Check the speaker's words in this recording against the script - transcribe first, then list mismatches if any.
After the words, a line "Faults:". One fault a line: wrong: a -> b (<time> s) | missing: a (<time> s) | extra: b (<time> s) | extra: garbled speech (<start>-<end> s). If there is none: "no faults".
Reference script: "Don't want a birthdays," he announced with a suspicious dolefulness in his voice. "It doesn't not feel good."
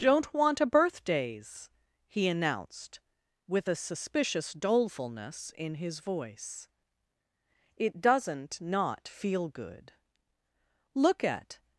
"Don't want a birthdays," he announced with a suspicious dolefulness in his voice. "It doesn't not feel good." "Look at
Faults:
extra: Look at (10.9 s)